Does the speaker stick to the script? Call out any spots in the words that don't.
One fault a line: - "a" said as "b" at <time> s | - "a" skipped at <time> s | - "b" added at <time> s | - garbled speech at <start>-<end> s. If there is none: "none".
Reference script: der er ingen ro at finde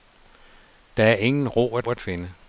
- "at" added at 1.9 s